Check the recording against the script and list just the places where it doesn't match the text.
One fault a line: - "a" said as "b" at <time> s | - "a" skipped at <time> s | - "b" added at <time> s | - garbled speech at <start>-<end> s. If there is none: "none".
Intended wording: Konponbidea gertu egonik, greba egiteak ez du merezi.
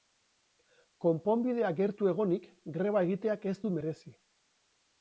none